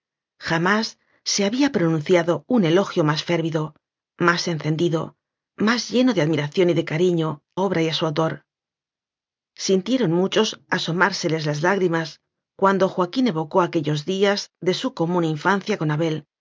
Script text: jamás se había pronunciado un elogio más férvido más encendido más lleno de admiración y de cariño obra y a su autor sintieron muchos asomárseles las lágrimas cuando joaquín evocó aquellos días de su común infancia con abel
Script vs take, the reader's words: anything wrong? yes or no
no